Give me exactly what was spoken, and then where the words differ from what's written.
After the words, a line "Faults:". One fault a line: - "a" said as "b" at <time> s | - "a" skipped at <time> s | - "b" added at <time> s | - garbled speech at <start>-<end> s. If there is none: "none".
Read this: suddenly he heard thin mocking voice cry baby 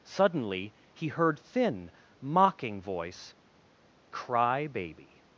suddenly he heard thin mocking voice cry baby
Faults:
none